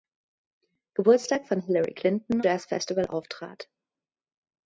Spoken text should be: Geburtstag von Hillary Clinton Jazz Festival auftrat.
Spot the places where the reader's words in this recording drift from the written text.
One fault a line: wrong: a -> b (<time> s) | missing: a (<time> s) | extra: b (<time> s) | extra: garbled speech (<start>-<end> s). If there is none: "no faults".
no faults